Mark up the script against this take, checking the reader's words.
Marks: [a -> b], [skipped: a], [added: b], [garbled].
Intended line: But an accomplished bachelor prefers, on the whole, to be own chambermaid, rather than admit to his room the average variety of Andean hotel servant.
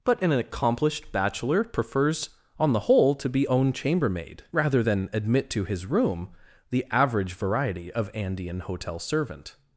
But an accomplished bachelor prefers, on the whole, to be own chambermaid, rather than admit to his room the average variety of Andean hotel servant.